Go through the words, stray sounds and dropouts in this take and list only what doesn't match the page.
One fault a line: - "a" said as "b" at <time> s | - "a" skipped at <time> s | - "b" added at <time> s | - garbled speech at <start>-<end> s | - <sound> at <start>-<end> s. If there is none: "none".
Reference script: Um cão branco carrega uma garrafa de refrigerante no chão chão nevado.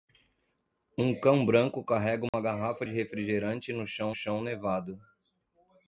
- dropout at 2.3-2.3 s